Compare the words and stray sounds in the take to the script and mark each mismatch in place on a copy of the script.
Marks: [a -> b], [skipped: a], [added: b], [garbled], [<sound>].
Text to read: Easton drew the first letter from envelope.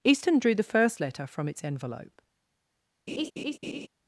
Easton drew the first letter from [added: its] envelope. [laugh]